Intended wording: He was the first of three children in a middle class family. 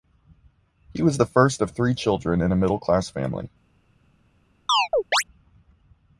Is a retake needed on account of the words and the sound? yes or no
yes